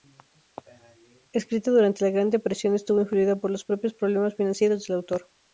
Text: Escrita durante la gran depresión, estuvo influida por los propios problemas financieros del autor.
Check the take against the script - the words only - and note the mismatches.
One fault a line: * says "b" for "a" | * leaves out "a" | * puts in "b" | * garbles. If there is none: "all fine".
all fine